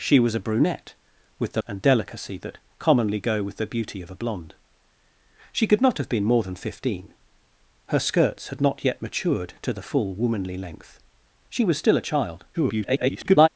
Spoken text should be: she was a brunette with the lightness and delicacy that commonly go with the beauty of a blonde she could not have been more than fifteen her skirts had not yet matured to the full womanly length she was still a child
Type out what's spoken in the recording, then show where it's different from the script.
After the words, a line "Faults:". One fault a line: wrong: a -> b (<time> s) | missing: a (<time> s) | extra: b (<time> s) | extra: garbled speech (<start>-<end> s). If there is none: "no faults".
she was a brunette with the and delicacy that commonly go with the beauty of a blonde she could not have been more than fifteen her skirts had not yet matured to the full womanly length she was still a child [garbled]
Faults:
missing: lightness (1.6 s)
extra: garbled speech (12.5-13.5 s)